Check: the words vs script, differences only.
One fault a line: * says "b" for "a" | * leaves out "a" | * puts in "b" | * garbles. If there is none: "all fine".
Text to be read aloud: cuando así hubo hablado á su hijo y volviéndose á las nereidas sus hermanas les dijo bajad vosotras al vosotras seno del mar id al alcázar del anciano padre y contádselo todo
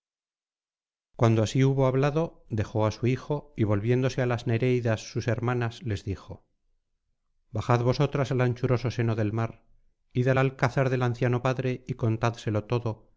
* puts in "dejó"
* says "anchuroso" for "vosotras"